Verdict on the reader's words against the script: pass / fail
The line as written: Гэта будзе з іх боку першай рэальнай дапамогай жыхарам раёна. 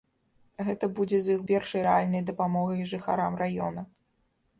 fail